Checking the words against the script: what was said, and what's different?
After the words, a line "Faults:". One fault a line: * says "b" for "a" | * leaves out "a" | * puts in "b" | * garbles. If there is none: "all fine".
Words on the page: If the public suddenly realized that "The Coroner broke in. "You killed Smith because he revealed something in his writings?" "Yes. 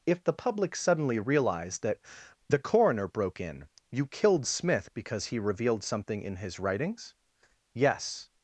If the public suddenly realized that "The Coroner broke in. "You killed Smith because he revealed something in his writings?" "Yes.
Faults:
all fine